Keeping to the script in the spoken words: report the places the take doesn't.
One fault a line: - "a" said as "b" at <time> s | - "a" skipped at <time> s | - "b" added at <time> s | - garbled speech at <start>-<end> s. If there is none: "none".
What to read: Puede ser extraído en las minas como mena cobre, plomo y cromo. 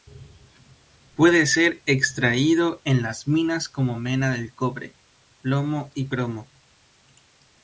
- "del" added at 4.3 s